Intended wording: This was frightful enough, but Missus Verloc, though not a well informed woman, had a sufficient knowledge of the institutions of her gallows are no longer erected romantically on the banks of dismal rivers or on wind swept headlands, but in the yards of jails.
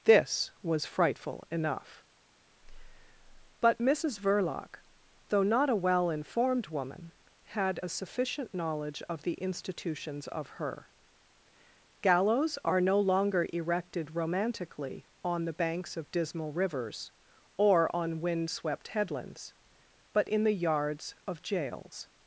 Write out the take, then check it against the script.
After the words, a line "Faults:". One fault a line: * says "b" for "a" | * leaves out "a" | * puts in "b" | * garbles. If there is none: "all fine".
This was frightful enough, but Missus Verloc, though not a well informed woman, had a sufficient knowledge of the institutions of her gallows are no longer erected romantically on the banks of dismal rivers or on wind swept headlands, but in the yards of jails.
Faults:
all fine